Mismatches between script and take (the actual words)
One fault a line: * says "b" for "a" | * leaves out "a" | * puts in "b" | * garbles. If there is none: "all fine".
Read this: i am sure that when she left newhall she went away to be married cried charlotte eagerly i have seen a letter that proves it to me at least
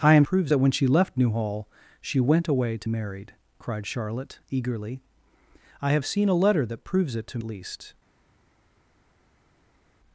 * says "proves" for "sure"
* leaves out "be"
* leaves out "me at"